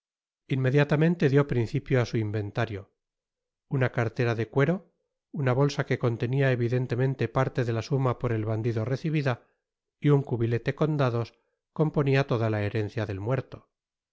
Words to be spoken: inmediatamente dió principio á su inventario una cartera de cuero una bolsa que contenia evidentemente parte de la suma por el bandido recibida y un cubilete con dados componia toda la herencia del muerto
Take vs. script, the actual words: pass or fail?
pass